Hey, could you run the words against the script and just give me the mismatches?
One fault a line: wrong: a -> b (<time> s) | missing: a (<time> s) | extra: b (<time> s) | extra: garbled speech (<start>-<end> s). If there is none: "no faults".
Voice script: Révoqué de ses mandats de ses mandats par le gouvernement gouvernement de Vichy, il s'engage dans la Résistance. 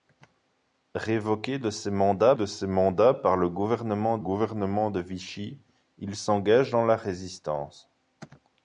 no faults